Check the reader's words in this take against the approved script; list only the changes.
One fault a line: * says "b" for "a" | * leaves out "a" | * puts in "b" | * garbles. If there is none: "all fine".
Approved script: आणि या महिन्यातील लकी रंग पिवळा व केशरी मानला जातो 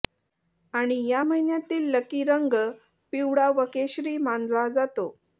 all fine